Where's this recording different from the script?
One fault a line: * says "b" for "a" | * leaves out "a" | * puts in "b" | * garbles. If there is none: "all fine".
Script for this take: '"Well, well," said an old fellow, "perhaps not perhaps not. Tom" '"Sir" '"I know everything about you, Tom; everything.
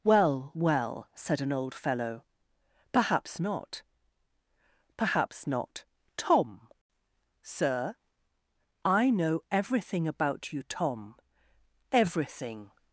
all fine